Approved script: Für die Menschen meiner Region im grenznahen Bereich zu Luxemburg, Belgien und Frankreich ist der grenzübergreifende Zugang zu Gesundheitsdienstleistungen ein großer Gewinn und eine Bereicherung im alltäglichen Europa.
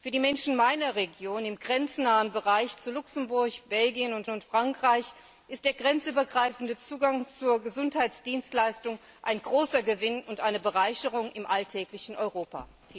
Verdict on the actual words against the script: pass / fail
fail